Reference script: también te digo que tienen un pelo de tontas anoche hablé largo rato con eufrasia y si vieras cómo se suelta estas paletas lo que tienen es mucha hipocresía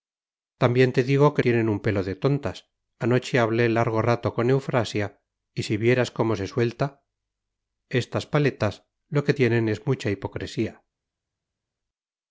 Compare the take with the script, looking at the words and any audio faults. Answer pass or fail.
pass